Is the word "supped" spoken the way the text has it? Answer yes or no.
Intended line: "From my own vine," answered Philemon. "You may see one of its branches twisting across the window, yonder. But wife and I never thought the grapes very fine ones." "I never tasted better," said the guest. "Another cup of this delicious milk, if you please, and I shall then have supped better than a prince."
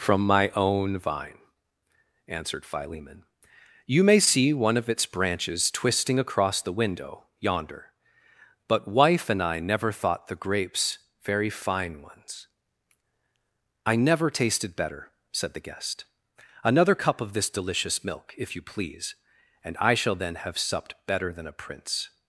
yes